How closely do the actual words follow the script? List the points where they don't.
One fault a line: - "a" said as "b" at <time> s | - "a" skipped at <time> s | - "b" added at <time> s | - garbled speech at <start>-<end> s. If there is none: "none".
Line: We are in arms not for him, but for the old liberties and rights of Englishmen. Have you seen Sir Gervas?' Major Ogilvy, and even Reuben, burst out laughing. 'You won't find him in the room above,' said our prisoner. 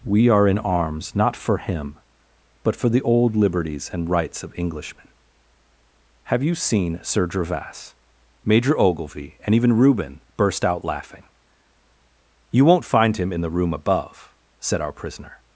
none